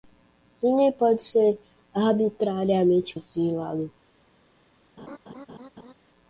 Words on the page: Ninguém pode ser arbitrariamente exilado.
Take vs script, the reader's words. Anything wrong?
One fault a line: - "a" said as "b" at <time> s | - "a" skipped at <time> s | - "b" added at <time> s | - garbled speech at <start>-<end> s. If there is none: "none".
none